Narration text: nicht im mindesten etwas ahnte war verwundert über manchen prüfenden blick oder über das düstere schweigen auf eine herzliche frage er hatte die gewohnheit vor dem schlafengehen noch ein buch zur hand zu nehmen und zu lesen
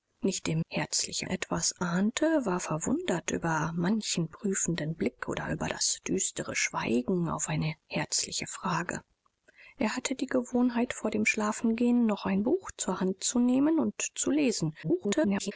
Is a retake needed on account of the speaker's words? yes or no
yes